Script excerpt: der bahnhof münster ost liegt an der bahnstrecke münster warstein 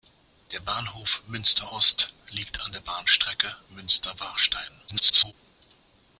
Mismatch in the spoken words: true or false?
true